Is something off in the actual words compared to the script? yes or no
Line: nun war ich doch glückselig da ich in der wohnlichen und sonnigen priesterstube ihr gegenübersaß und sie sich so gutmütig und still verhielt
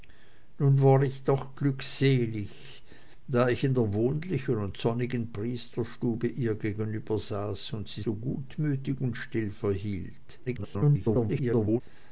yes